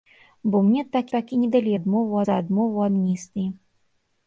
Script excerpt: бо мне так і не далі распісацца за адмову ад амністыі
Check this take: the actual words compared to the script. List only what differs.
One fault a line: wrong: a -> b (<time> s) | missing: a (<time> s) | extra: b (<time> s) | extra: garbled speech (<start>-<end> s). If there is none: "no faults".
extra: так (1.1 s)
wrong: распісацца -> адмову (1.8 s)
missing: ад (2.8 s)